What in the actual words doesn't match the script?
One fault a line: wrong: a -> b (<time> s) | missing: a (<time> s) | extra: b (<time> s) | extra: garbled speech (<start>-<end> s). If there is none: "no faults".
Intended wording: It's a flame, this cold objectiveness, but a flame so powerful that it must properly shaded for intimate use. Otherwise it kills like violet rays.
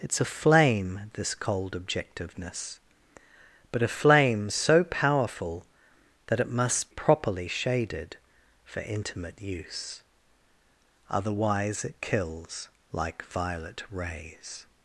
no faults